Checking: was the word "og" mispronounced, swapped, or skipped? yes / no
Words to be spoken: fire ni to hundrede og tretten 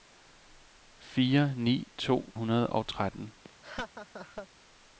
no